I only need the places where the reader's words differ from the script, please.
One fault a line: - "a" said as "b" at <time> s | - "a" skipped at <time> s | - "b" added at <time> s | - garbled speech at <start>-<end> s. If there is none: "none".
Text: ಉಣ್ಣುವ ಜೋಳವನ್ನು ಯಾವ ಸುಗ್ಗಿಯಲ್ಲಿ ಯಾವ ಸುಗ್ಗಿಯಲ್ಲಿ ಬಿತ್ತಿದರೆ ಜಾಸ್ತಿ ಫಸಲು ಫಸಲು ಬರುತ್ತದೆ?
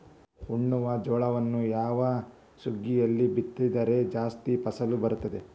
- "ಯಾವ ಸುಗ್ಗಿಯಲ್ಲಿ" skipped at 3.3 s
- "ಫಸಲು" skipped at 5.0 s